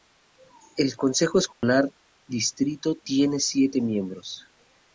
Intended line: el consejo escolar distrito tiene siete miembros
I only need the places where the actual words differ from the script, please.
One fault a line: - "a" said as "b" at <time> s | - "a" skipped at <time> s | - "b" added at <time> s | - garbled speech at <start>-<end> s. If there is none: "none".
none